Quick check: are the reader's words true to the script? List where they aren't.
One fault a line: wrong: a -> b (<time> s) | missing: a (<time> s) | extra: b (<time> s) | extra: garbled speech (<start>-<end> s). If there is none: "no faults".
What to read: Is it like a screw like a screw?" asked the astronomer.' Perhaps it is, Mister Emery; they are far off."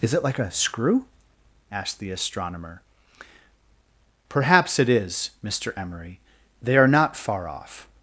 missing: like a screw (1.1 s)
extra: not (6.9 s)